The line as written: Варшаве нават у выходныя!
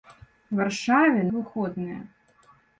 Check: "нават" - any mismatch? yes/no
yes